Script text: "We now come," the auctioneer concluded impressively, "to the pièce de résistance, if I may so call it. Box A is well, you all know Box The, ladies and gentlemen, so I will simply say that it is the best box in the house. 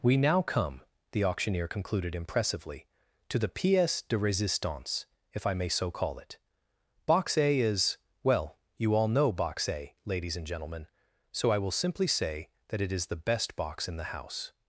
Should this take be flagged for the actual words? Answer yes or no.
yes